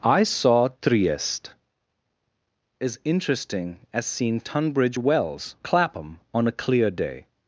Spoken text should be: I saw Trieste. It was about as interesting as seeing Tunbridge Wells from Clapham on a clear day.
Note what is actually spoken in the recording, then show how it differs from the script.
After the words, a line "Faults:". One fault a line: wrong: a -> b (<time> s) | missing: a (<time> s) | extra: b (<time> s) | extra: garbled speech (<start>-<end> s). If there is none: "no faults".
I saw Trieste. As interesting as seeing Tunbridge Wells Clapham on a clear day.
Faults:
missing: It was about (1.5 s)
missing: from (5.5 s)